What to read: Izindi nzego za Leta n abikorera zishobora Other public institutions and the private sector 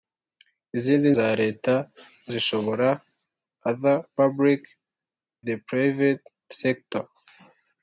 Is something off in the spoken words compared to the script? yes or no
yes